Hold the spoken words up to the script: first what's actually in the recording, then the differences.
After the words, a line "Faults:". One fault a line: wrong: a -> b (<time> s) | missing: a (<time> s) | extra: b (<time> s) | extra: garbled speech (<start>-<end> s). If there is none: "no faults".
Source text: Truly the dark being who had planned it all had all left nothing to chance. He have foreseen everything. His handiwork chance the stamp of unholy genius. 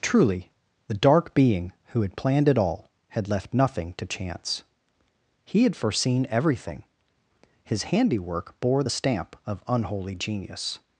Truly the dark being who had planned it all had left nothing to chance. He had foreseen everything. His handiwork bore the stamp of unholy genius.
Faults:
missing: all (3.3 s)
wrong: have -> had (5.6 s)
wrong: chance -> bore (8.6 s)